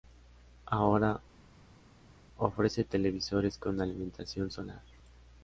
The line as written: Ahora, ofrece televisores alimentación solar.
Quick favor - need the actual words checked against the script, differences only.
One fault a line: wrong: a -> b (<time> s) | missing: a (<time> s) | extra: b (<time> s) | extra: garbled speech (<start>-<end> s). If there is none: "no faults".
extra: con (3.6 s)